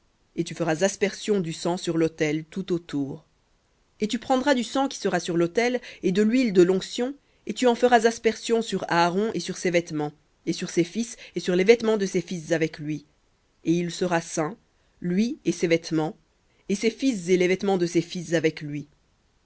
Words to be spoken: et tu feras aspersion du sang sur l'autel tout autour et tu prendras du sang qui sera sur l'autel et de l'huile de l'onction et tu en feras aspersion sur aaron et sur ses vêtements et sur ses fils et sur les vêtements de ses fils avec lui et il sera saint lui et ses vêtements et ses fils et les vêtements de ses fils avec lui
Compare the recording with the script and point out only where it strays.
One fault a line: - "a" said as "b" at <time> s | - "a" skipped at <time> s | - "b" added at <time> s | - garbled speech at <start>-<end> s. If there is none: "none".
none